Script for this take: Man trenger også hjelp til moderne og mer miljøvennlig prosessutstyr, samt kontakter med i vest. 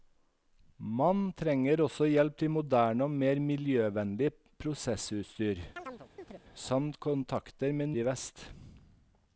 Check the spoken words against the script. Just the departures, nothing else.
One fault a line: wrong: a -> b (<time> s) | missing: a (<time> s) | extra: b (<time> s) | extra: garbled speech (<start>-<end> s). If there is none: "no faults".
no faults